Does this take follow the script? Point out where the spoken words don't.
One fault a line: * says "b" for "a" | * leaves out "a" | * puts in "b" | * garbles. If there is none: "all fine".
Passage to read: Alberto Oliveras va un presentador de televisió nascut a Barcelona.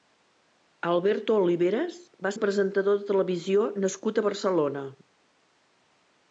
all fine